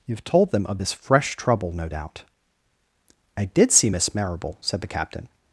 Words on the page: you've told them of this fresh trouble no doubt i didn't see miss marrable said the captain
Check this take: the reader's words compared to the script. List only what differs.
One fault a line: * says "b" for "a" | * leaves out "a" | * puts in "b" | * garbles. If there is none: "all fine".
* says "did" for "didn't"